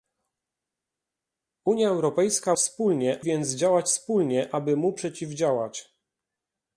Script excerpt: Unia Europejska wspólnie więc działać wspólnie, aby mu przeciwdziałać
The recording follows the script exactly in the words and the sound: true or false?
true